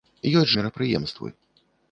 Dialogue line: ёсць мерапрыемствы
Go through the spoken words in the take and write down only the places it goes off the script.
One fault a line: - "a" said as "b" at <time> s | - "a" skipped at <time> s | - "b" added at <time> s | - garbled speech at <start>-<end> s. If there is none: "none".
none